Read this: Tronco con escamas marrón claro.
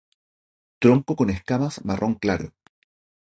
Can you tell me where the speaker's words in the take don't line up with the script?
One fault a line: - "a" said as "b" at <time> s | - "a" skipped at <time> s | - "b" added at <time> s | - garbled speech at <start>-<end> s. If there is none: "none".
none